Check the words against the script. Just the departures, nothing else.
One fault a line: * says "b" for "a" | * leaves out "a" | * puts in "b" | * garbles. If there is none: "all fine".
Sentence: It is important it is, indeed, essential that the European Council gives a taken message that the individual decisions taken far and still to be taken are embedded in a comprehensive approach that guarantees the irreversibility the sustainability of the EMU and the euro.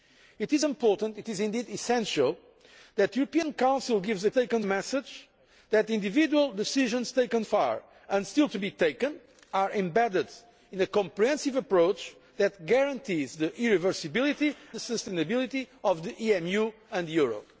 all fine